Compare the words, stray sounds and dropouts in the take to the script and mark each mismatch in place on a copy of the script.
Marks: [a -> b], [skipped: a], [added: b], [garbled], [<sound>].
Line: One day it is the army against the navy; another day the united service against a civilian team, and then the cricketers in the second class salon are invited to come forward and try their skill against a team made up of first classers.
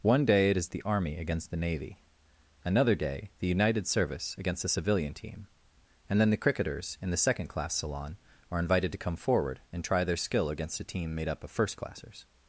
One day it is the army against the navy; another day the united service against [a -> the] civilian team, and then the cricketers in the second class salon are invited to come forward and try their skill against a team made up of first classers.